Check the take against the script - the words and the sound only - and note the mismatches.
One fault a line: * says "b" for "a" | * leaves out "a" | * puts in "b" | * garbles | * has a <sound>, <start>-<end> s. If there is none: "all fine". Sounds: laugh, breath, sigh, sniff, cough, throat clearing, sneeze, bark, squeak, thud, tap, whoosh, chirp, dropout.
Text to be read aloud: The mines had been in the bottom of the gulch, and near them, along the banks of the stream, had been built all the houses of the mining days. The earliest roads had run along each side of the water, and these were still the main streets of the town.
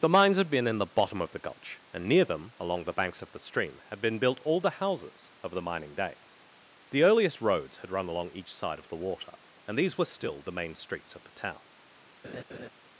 * has a laugh, 12.2-12.7 s